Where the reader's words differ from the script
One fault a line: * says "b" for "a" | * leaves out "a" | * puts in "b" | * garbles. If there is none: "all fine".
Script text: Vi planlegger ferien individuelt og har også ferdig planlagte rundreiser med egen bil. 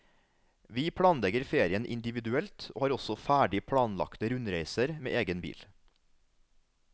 all fine